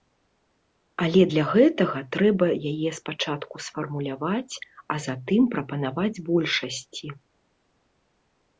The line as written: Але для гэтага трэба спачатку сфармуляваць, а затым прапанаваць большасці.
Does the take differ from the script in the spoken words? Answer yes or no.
yes